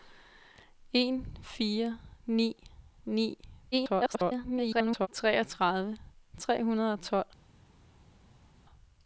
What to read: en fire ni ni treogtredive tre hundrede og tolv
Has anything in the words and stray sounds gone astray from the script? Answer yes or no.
yes